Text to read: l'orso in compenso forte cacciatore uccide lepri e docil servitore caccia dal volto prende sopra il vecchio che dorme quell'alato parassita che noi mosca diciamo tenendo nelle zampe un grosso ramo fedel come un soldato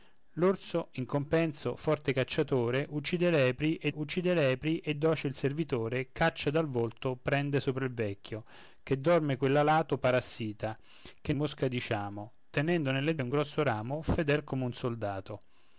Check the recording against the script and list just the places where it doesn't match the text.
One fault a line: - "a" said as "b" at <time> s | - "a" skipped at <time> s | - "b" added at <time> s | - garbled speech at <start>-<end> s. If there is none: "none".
- "uccide lepri e" added at 3.9 s
- "noi" skipped at 11.3 s
- "zampe" skipped at 13.2 s